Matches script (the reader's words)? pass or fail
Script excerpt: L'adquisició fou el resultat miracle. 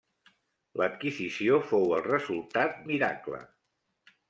pass